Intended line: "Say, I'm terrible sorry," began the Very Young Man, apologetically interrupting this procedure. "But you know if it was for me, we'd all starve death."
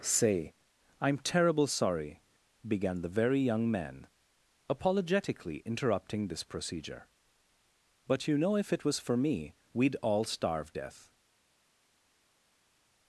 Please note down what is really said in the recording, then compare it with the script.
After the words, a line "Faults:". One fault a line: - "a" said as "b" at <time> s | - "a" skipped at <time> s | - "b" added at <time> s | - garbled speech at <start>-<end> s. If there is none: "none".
"Say, I'm terrible sorry," began the Very Young Man, apologetically interrupting this procedure. "But you know if it was for me, we'd all starve death."
Faults:
none